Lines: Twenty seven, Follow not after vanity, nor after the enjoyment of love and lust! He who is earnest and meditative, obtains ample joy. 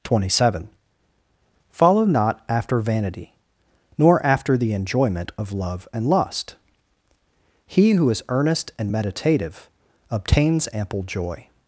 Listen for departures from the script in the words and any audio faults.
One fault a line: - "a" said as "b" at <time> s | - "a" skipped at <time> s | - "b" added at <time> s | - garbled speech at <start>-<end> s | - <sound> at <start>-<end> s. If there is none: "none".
none